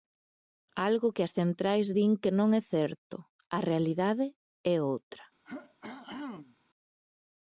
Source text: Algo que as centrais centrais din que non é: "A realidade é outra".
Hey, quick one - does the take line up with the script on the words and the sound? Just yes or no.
no